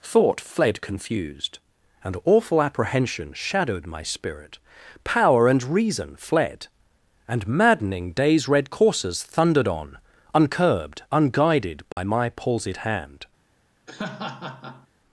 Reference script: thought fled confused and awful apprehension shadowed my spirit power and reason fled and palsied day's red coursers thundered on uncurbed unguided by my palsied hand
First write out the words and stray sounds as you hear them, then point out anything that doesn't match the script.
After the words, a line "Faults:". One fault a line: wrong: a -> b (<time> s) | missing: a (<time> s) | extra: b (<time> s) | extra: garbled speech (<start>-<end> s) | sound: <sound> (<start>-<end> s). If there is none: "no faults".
thought fled confused and awful apprehension shadowed my spirit power and reason fled and maddening day's red coursers thundered on uncurbed unguided by my palsied hand
Faults:
wrong: palsied -> maddening (7.5 s)
sound: dropout (11.9-12.0 s)
sound: laugh (13.9-14.9 s)